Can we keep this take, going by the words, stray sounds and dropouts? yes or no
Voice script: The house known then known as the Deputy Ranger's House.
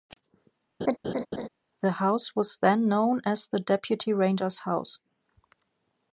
no